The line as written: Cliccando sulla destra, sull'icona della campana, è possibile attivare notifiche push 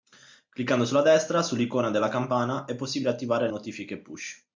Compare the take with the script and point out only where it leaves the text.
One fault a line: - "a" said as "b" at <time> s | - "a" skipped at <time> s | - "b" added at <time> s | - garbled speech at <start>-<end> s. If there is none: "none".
none